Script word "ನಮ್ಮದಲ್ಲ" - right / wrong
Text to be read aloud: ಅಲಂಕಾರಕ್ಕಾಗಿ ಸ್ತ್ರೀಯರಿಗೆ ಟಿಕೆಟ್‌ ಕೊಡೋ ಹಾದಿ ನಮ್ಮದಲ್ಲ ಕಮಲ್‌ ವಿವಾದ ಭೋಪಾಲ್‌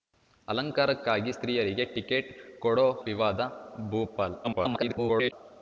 wrong